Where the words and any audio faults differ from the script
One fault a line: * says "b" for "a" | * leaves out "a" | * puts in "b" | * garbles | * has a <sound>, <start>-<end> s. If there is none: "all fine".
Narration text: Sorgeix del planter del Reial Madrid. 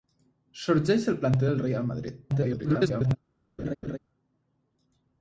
* garbles
* has a laugh, 3.6-4.0 s